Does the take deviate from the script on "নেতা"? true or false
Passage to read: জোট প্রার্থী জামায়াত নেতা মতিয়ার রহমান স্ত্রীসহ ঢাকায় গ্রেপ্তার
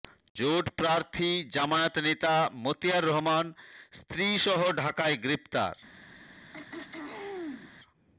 false